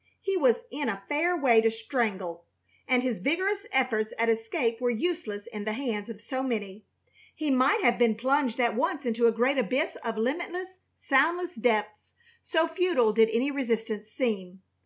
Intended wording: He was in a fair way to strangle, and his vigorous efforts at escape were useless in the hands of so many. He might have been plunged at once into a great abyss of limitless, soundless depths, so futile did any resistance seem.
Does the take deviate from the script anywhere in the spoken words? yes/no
no